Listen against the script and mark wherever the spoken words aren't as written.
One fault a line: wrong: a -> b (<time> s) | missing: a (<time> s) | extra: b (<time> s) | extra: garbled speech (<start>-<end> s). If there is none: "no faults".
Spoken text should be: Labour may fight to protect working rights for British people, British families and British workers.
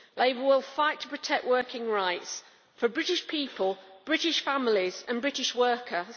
wrong: may -> will (0.4 s)